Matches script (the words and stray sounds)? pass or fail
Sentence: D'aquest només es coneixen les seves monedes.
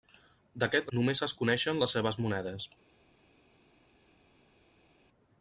pass